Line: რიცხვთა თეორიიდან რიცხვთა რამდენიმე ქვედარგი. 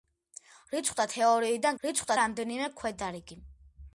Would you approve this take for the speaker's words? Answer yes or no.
yes